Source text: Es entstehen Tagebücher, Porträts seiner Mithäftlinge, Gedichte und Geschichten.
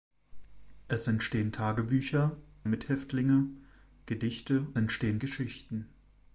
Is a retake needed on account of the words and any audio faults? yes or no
yes